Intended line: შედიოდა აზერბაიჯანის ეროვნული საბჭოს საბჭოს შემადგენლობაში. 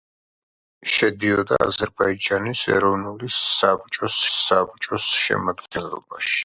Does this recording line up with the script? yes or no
yes